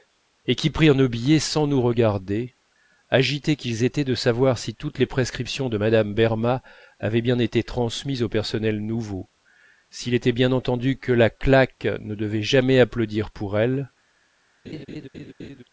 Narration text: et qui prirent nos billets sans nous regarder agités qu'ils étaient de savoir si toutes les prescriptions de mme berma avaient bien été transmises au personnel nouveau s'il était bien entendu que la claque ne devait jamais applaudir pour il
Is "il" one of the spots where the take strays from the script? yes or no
yes